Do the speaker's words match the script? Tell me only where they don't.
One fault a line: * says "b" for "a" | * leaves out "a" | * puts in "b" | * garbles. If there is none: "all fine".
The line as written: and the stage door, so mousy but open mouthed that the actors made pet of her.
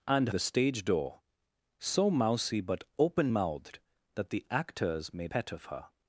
all fine